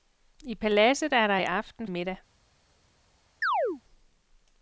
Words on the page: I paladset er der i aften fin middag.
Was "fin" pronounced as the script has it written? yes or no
no